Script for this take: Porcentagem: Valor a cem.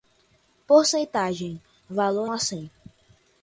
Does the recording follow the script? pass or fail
pass